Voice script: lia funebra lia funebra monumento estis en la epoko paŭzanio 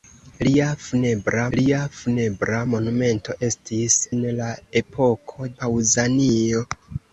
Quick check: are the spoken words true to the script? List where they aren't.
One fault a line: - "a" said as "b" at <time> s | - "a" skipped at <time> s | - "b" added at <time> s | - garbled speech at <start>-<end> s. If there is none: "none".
none